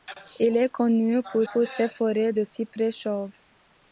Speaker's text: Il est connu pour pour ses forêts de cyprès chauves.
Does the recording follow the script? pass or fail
pass